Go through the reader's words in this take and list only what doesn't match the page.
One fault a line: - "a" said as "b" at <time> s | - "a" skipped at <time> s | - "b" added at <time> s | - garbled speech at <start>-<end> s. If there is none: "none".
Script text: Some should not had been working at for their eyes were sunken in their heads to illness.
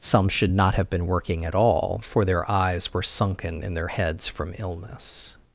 - "had" said as "have" at 0.7 s
- "all" added at 1.6 s
- "to" said as "from" at 4.3 s